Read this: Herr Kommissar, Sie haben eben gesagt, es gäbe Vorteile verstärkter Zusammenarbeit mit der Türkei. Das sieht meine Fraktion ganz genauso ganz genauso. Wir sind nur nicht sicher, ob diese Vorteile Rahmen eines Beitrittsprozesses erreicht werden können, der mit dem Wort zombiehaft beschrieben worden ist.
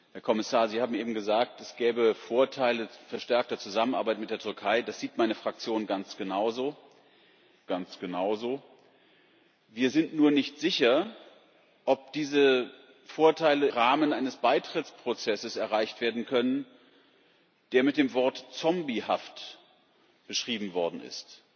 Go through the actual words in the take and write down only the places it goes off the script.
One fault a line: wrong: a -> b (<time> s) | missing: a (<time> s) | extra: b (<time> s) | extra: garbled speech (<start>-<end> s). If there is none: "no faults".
no faults